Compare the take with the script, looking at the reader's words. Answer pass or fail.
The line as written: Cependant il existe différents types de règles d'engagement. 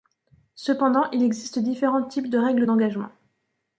pass